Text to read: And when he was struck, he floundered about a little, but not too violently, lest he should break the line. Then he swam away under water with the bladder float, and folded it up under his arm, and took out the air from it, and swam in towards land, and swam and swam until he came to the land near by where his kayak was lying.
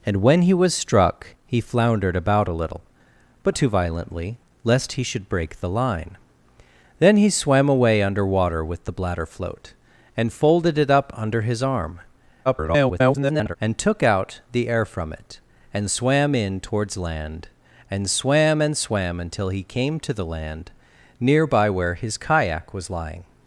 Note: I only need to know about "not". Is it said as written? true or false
false